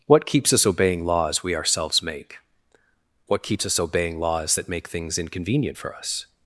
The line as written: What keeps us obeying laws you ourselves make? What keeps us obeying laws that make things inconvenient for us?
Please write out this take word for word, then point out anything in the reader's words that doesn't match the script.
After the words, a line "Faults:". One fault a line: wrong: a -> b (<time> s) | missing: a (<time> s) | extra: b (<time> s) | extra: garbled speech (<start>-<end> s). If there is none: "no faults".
What keeps us obeying laws we ourselves make? What keeps us obeying laws that make things inconvenient for us?
Faults:
wrong: you -> we (1.4 s)